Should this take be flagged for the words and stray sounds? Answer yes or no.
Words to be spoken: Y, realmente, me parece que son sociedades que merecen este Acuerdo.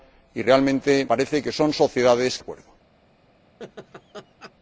yes